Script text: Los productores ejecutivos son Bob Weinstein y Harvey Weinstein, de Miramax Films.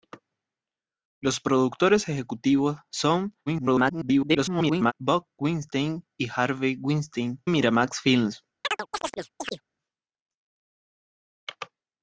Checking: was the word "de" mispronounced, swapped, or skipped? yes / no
yes